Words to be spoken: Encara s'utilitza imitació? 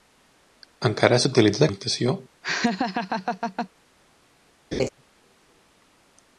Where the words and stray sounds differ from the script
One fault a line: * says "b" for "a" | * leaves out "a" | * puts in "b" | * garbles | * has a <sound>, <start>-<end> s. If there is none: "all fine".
* has a laugh, 2.4-3.7 s
* has a laugh, 4.7-4.9 s